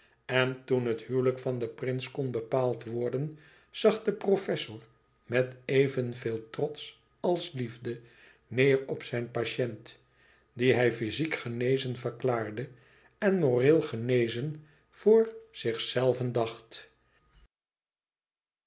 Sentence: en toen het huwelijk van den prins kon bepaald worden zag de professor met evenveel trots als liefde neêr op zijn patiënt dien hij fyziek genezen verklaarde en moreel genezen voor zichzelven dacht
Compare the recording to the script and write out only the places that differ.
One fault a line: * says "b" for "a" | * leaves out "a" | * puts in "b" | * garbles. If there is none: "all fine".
all fine